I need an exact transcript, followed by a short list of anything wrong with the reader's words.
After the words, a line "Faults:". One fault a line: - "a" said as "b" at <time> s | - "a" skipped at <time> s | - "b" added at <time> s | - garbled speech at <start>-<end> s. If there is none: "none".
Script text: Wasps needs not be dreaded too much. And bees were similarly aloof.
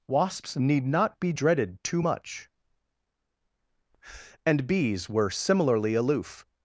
Wasps need not be dreaded too much. And bees were similarly aloof.
Faults:
- "needs" said as "need" at 0.6 s